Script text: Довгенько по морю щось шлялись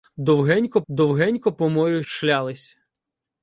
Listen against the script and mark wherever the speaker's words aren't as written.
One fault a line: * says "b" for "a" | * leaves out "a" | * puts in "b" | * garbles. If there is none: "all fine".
* puts in "довгенько"
* leaves out "щось"